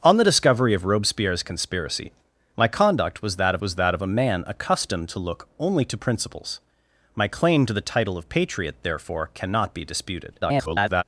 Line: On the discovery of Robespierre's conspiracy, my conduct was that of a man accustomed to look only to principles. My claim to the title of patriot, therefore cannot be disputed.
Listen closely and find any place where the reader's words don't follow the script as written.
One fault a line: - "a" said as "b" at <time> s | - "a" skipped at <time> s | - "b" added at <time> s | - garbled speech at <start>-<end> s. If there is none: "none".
- "was that of" added at 3.6 s
- garbled speech at 10.4-11.0 s